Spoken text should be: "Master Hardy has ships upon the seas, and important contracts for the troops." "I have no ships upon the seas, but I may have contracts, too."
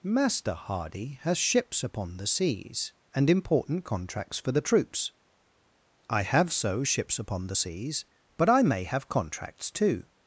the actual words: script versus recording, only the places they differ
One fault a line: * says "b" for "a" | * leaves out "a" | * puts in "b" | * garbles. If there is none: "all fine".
* says "so" for "no"